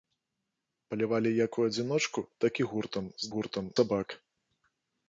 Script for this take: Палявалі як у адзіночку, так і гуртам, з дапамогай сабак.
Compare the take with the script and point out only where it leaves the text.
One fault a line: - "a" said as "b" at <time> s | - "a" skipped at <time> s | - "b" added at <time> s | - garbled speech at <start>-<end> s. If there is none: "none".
- "дапамогай" said as "гуртам" at 3.3 s